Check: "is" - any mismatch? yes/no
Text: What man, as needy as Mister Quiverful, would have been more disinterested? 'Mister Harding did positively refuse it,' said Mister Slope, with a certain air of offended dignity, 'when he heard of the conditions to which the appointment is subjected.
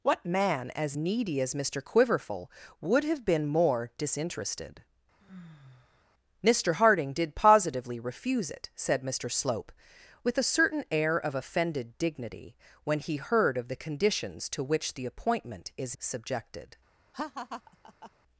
no